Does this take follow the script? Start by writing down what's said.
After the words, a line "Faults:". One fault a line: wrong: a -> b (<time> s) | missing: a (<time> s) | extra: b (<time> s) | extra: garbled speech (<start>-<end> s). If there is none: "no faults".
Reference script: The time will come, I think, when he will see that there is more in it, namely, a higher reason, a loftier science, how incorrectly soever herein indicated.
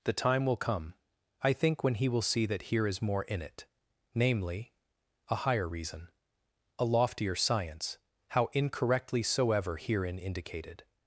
The time will come, I think, when he will see that here is more in it, namely, a higher reason, a loftier science, how incorrectly soever herein indicated.
Faults:
wrong: there -> here (2.6 s)